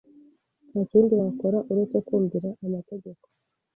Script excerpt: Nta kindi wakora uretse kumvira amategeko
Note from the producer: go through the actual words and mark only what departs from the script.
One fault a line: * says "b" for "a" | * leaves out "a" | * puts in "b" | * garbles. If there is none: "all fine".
all fine